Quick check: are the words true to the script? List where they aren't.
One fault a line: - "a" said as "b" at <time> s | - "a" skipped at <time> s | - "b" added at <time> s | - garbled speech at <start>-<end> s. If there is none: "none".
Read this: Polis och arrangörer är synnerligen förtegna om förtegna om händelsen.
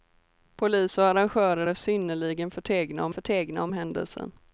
none